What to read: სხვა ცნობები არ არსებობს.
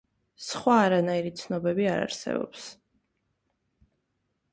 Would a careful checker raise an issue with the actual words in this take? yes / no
yes